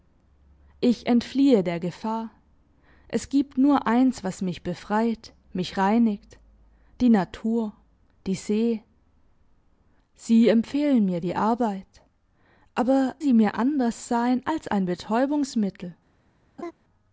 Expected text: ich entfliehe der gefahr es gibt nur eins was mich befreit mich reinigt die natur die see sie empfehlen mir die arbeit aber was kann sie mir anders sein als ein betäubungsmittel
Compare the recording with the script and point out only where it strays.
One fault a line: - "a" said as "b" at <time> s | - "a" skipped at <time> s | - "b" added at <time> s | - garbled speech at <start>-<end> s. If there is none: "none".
- "was kann" skipped at 13.2 s